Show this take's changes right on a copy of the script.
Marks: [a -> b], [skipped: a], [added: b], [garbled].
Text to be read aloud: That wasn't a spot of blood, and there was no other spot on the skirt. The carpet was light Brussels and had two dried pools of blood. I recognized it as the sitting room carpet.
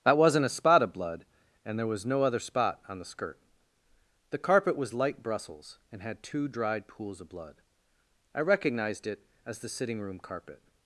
That wasn't a spot of blood, and there was no other spot on the skirt. The carpet was light Brussels and had two dried pools of blood. I recognized it as the sitting room carpet.